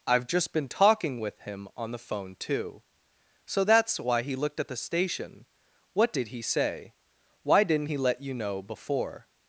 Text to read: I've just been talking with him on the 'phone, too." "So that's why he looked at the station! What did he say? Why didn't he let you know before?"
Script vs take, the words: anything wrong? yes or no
no